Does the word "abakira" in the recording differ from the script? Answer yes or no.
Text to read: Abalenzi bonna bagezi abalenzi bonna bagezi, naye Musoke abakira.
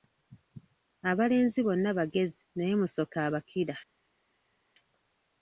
no